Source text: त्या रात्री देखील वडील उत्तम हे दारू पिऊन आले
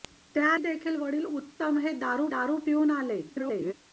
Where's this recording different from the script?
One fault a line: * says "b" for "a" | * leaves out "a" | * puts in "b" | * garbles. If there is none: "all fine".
* leaves out "रात्री"
* puts in "दारू"
* garbles